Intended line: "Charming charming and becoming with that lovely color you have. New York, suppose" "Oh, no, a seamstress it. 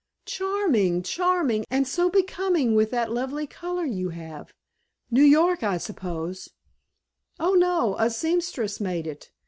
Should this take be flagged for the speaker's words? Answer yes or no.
yes